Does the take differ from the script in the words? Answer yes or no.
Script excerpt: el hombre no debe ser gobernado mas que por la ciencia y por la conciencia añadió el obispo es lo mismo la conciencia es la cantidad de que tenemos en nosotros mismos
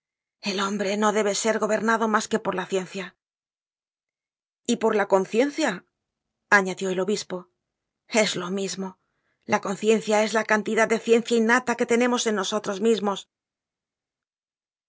yes